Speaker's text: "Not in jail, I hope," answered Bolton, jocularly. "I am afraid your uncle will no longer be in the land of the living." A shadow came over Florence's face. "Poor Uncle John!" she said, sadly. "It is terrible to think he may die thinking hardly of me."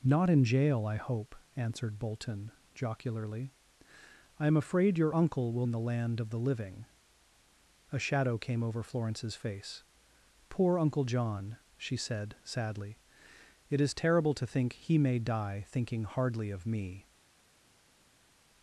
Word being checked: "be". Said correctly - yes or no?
no